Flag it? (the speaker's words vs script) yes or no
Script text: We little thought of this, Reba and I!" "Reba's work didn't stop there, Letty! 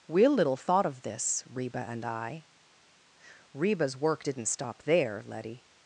no